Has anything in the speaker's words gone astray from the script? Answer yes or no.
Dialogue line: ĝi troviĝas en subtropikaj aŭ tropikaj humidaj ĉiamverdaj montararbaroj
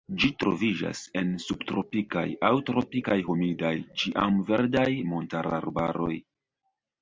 no